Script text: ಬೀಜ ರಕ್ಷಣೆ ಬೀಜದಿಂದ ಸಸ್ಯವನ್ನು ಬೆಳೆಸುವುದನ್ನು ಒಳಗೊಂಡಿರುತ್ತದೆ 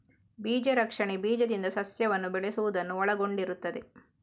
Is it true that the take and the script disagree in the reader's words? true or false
false